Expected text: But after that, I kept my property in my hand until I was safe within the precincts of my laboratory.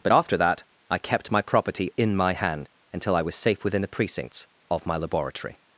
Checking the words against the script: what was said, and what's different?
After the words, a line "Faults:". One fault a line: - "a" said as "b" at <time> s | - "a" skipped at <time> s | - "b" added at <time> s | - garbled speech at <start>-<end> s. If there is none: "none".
But after that, I kept my property in my hand until I was safe within the precincts of my laboratory.
Faults:
none